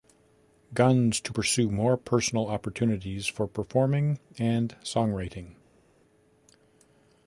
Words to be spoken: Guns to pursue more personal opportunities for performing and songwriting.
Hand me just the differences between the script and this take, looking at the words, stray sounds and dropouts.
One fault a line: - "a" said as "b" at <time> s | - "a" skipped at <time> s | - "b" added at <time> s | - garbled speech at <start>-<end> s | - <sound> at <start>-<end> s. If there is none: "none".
none